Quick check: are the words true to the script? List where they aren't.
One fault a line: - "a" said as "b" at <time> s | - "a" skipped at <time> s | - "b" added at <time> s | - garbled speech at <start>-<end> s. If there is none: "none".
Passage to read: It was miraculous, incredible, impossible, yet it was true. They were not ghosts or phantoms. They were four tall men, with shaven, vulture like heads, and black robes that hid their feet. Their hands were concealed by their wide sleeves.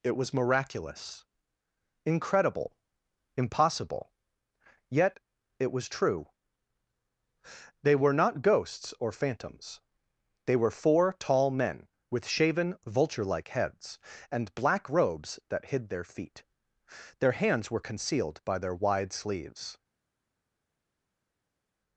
none